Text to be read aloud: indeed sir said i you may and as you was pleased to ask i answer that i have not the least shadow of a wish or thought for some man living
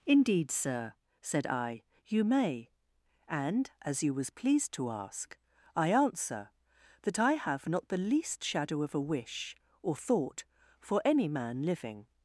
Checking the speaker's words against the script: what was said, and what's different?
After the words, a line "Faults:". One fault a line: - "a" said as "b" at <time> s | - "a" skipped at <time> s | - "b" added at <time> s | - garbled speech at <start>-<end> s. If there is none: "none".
indeed sir said i you may and as you was pleased to ask i answer that i have not the least shadow of a wish or thought for any man living
Faults:
- "some" said as "any" at 11.1 s